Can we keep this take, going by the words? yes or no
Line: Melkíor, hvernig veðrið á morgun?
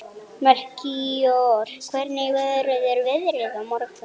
no